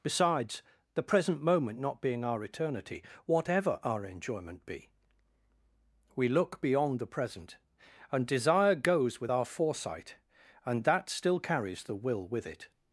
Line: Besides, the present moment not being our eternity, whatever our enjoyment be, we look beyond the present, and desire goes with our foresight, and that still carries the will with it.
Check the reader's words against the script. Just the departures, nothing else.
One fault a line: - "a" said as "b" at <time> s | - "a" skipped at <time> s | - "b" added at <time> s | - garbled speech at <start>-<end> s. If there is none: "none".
none